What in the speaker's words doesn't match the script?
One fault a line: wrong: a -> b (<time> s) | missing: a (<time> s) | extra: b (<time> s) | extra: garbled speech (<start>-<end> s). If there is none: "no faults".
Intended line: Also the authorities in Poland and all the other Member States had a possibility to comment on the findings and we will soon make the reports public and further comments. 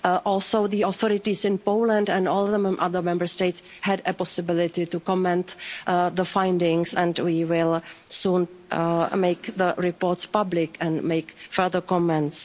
extra: make (11.0 s)